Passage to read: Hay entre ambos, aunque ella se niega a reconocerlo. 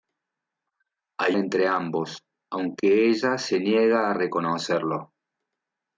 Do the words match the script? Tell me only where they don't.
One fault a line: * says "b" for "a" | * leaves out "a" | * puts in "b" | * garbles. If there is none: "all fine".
all fine